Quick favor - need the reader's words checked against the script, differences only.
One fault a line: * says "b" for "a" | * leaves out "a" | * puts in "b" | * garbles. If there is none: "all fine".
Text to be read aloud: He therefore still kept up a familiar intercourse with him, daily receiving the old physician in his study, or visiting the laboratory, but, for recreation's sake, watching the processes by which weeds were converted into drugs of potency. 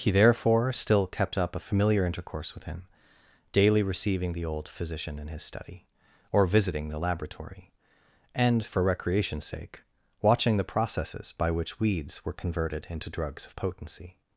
* says "and" for "but"